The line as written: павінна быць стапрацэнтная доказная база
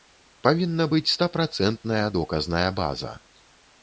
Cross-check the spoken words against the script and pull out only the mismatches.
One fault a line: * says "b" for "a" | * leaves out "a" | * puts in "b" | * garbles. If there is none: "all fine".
all fine